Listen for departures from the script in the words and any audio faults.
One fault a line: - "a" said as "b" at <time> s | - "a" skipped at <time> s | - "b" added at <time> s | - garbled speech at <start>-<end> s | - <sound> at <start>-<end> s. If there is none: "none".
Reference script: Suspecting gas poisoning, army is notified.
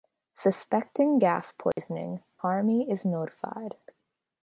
- dropout at 1.7-1.8 s